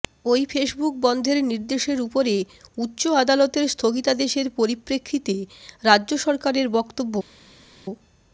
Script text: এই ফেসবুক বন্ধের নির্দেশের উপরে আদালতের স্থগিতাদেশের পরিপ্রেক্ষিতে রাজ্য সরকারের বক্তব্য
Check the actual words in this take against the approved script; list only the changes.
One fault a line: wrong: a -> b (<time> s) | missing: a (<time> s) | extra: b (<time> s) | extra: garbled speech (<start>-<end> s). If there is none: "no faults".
wrong: এই -> ওই (0.2 s)
extra: উচ্চ (2.8 s)